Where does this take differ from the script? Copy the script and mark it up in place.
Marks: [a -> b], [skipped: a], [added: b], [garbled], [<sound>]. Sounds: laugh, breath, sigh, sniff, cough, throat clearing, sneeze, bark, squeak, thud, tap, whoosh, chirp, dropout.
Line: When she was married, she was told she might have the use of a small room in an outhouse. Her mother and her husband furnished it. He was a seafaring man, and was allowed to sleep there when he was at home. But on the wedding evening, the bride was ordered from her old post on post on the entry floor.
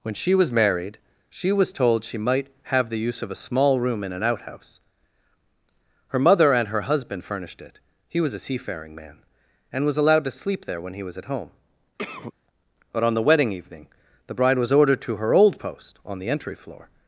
When she was married, she was told she might have the use of a small room in an outhouse. Her mother and her husband furnished it. He was a seafaring man, and was allowed to sleep there when he was at home. [cough] But on the wedding evening, the bride was ordered [from -> to] her old post on [skipped: post on] the entry floor.